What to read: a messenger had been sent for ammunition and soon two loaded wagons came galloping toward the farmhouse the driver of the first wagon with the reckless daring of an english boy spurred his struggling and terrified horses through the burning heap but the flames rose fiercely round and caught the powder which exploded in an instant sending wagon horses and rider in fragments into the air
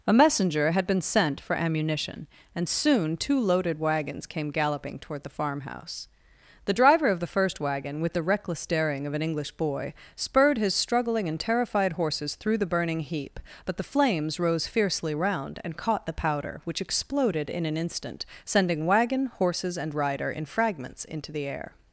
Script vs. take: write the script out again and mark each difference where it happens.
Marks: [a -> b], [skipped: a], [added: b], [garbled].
a messenger had been sent for ammunition and soon two loaded wagons came galloping toward the farmhouse the driver of the first wagon with the reckless daring of an english boy spurred his struggling and terrified horses through the burning heap but the flames rose fiercely round and caught the powder which exploded in an instant sending wagon horses and rider in fragments into the air